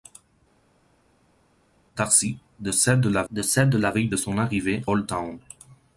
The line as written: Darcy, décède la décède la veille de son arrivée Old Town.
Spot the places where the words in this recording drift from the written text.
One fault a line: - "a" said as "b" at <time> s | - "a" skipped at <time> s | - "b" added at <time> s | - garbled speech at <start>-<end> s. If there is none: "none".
none